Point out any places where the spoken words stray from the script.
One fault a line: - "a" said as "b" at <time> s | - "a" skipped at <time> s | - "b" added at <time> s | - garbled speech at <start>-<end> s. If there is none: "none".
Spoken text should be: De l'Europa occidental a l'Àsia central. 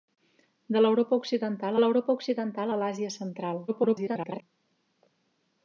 - "l'Europa occidental" added at 1.8 s
- garbled speech at 3.7-4.4 s